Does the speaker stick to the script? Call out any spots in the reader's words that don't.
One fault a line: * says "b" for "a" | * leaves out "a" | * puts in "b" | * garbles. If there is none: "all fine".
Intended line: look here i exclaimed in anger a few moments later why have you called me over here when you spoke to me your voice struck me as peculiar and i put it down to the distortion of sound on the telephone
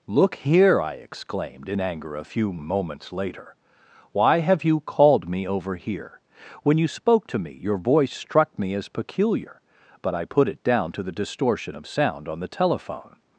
* says "but" for "and"